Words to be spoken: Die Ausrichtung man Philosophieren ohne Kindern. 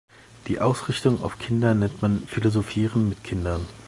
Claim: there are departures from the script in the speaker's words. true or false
true